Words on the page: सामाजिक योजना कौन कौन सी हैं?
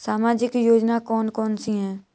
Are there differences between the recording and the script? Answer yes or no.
no